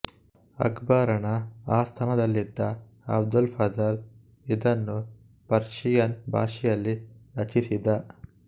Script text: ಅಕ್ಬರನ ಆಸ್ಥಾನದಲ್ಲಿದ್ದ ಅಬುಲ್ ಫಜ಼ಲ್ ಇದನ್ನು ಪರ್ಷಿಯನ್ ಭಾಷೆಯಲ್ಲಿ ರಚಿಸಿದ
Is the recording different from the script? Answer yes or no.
no